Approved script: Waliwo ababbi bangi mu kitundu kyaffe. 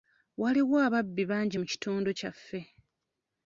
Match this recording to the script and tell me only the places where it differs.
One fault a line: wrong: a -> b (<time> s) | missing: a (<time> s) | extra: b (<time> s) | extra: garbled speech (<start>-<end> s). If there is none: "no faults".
no faults